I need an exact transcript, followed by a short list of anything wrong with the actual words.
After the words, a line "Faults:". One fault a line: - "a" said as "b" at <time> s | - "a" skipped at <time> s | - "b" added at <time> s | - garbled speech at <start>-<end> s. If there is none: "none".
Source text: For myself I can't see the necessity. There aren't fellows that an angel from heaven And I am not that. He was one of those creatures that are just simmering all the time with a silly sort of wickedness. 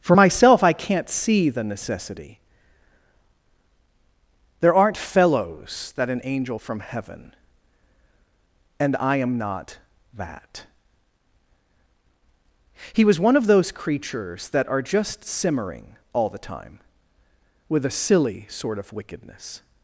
For myself I can't see the necessity. There aren't fellows that an angel from heaven And I am not that. He was one of those creatures that are just simmering all the time with a silly sort of wickedness.
Faults:
none